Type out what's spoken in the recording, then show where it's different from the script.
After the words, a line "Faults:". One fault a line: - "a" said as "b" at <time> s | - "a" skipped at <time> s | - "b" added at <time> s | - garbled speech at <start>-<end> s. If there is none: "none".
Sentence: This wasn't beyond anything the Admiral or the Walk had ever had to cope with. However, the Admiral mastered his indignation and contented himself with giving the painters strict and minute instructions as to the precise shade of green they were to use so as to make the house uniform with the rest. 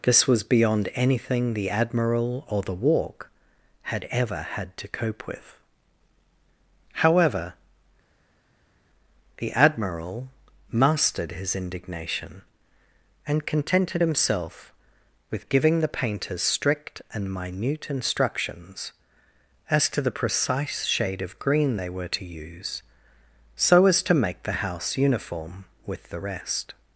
This was beyond anything the Admiral or the Walk had ever had to cope with. However, the Admiral mastered his indignation and contented himself with giving the painters strict and minute instructions as to the precise shade of green they were to use so as to make the house uniform with the rest.
Faults:
- "wasn't" said as "was" at 0.3 s